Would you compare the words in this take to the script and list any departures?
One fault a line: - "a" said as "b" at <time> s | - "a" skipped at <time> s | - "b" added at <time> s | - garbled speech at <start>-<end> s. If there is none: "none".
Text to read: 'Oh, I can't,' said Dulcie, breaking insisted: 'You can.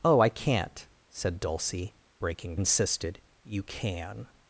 none